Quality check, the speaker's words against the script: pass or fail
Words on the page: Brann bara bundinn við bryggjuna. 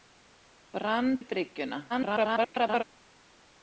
fail